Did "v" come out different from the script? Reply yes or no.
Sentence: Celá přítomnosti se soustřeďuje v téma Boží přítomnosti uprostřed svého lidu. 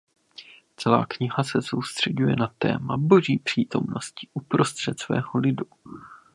yes